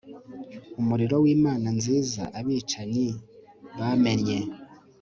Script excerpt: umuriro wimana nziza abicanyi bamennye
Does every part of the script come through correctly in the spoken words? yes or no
yes